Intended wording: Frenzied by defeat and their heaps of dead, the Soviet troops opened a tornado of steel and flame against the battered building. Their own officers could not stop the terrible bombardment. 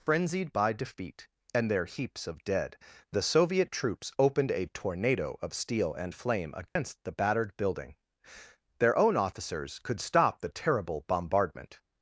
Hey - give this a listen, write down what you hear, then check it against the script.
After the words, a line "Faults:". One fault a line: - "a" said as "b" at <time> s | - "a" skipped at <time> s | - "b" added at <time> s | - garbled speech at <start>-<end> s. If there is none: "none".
Frenzied by defeat and their heaps of dead, the Soviet troops opened a tornado of steel and flame against the battered building. Their own officers could stop the terrible bombardment.
Faults:
- "not" skipped at 10.0 s